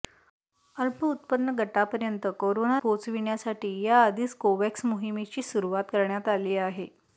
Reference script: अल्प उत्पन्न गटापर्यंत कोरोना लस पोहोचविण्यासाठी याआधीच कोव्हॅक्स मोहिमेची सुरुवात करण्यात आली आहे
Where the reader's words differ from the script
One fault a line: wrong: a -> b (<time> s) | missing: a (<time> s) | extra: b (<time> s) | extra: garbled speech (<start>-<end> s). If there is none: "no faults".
missing: लस (2.8 s)